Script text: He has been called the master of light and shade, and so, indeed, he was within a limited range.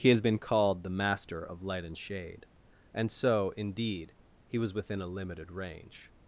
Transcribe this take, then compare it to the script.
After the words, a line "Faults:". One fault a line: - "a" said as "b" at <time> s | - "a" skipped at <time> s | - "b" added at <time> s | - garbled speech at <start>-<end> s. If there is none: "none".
He has been called the master of light and shade, and so, indeed, he was within a limited range.
Faults:
none